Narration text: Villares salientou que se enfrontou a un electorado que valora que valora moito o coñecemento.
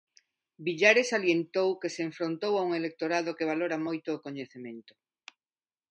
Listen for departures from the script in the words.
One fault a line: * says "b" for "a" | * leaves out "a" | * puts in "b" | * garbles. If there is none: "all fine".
* leaves out "que valora"